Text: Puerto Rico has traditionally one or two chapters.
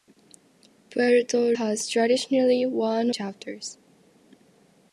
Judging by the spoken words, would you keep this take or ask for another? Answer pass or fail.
fail